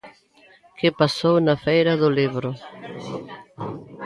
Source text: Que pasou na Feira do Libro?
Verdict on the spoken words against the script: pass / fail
pass